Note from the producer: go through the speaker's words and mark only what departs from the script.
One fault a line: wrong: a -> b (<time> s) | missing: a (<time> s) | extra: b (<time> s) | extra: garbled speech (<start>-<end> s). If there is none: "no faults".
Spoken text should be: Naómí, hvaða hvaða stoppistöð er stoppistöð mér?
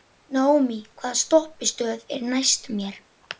missing: hvaða (1.2 s)
wrong: stoppistöð -> næst (2.3 s)